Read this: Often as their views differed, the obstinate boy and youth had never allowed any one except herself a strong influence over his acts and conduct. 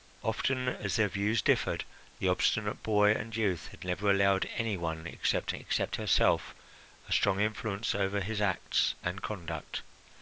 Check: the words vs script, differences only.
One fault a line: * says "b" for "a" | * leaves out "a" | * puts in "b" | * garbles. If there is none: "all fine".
* puts in "except"